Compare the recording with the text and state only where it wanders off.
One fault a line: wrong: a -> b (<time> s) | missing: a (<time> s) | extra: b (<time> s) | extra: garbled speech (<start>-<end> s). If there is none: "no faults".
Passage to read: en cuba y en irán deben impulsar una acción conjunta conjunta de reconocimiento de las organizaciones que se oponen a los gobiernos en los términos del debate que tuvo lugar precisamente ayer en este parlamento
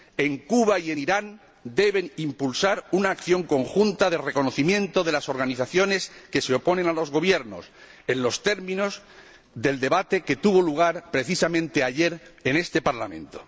missing: conjunta (4.1 s)